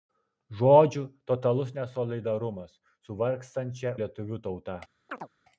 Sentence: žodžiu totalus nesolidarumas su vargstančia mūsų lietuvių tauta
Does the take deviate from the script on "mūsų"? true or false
true